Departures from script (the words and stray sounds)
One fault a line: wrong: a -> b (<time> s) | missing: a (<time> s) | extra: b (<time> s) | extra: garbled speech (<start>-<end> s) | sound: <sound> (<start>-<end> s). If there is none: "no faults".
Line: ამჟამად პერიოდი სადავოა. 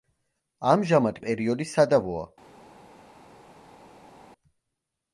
no faults